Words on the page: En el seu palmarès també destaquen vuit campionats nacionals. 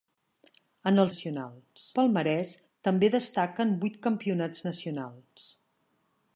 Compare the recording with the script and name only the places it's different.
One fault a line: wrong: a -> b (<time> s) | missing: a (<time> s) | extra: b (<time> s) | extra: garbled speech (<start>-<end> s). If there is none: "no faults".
wrong: seu -> nacionals (1.1 s)